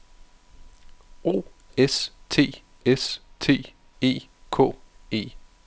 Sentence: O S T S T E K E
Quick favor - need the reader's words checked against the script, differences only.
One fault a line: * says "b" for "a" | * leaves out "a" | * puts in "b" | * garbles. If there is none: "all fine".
all fine